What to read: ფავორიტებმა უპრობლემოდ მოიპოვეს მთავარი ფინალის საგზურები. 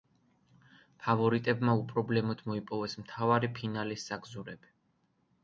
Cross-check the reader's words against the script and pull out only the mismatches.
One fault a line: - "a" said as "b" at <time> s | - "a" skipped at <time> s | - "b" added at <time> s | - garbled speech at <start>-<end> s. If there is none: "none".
none